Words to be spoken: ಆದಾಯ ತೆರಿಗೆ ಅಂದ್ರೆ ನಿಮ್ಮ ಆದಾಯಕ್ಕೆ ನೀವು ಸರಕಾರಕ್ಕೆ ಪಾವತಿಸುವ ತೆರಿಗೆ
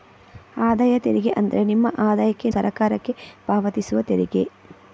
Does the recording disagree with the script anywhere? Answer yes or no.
yes